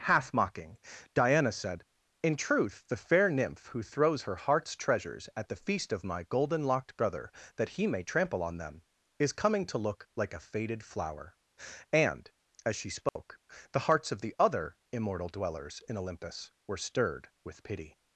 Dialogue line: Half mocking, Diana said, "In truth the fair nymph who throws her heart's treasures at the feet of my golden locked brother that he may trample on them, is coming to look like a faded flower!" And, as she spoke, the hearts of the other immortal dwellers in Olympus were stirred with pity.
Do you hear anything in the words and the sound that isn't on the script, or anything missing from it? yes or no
yes